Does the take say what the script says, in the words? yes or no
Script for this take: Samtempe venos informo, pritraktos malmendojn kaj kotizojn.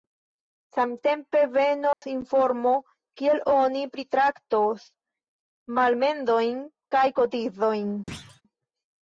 no